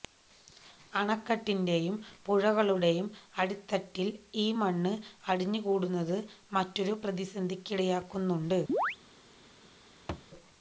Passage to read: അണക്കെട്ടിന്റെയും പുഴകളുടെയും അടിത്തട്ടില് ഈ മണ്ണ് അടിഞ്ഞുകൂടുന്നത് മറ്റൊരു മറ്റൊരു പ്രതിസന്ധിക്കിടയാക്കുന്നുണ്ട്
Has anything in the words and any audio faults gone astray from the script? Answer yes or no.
yes